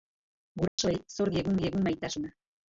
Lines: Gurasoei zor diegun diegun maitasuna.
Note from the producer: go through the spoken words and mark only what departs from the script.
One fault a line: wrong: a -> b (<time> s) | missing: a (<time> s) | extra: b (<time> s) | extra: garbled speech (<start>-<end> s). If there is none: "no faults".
no faults